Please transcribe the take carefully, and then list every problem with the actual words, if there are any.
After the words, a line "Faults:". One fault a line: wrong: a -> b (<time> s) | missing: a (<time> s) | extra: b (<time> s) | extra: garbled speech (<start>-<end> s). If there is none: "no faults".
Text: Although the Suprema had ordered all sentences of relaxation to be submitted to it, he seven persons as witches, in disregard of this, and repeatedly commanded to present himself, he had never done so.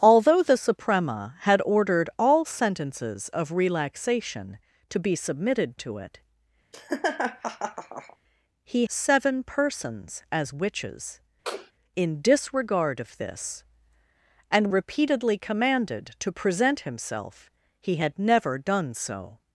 Although the Suprema had ordered all sentences of relaxation to be submitted to it, he seven persons as witches, in disregard of this, and repeatedly commanded to present himself, he had never done so.
Faults:
no faults